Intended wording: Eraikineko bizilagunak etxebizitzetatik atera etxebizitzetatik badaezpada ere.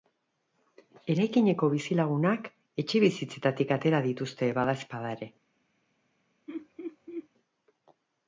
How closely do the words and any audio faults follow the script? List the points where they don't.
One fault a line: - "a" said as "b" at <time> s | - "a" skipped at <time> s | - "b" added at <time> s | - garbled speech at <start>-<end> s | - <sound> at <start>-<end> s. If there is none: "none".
- "etxebizitzetatik" said as "dituzte" at 4.1 s
- laugh at 6.5-7.3 s